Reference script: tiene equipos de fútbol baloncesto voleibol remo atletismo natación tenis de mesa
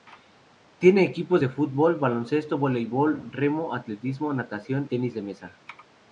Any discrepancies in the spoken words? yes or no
no